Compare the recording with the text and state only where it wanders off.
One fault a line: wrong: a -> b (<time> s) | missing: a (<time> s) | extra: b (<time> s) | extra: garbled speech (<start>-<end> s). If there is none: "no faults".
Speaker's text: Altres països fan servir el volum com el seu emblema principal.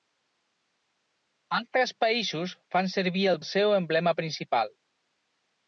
missing: volum com (3.4 s)